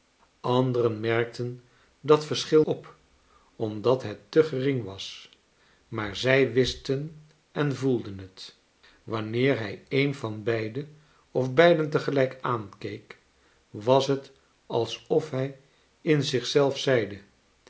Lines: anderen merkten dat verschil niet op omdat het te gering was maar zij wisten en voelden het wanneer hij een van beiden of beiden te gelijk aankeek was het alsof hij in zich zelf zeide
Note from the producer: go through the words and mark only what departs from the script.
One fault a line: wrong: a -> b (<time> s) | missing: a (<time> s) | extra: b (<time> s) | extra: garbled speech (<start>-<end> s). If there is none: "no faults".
missing: niet (2.6 s)